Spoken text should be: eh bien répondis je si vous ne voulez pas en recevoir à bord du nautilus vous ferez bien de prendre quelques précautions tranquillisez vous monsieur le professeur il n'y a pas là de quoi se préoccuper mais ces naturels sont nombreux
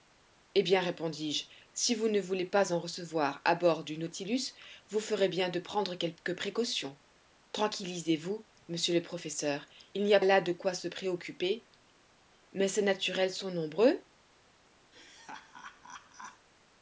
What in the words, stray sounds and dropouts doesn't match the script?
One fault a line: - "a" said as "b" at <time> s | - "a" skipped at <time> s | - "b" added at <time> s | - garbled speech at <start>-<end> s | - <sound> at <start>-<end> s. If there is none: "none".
- "pas" skipped at 10.2 s
- laugh at 14.9-16.5 s